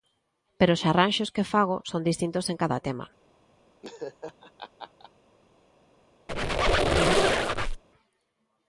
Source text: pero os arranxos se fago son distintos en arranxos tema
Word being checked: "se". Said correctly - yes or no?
no